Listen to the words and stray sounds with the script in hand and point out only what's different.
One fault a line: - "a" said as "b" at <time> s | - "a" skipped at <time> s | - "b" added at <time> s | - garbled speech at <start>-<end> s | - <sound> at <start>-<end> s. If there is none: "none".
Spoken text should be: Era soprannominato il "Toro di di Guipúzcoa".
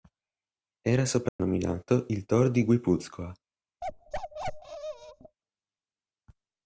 - dropout at 1.3-1.4 s
- "di" skipped at 2.6 s
- bark at 3.8-5.4 s